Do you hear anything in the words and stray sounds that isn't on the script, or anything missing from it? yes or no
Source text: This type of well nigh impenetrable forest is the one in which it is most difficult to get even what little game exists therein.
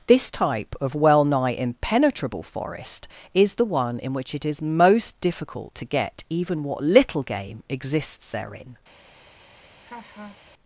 yes